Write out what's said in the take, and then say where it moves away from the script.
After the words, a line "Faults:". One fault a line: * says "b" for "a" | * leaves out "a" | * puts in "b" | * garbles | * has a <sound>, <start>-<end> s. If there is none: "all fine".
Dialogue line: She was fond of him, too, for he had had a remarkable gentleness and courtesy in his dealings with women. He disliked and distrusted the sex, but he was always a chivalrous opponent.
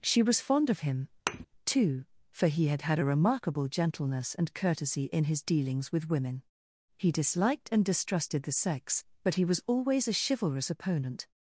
She was fond of him, too, for he had had a remarkable gentleness and courtesy in his dealings with women. He disliked and distrusted the sex, but he was always a chivalrous opponent.
Faults:
* has a thud, 1.3-1.5 s